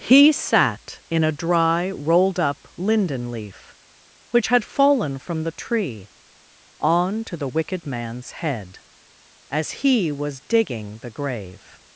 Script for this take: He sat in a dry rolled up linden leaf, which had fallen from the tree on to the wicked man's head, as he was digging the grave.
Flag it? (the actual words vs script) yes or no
no